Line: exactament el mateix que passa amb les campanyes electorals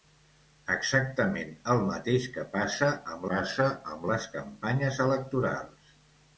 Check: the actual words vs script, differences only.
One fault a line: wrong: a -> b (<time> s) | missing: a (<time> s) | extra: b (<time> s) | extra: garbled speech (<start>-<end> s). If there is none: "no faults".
extra: passa amb (3.3 s)